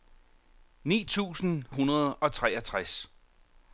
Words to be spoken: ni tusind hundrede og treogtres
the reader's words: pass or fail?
pass